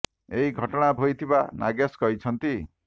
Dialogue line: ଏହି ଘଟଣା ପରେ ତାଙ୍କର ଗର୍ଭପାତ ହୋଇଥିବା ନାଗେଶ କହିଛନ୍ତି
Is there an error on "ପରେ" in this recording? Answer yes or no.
yes